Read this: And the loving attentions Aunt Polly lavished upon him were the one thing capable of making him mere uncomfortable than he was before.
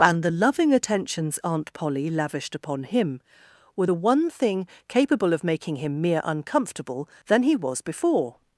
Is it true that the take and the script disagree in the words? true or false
false